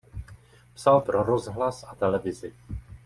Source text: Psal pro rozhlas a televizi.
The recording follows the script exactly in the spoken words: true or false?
true